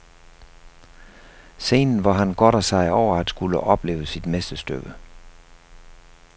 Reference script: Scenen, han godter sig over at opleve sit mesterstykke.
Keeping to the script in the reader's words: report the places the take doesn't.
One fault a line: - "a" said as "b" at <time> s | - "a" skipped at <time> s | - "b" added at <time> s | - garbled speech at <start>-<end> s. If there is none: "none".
- "hvor" added at 2.0 s
- "skulle" added at 3.3 s